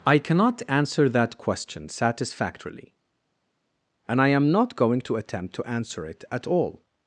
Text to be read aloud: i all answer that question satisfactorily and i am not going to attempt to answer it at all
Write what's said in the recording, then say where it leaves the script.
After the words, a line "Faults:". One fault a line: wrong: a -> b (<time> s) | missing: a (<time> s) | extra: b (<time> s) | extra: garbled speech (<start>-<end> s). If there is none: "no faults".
i cannot answer that question satisfactorily and i am not going to attempt to answer it at all
Faults:
wrong: all -> cannot (0.2 s)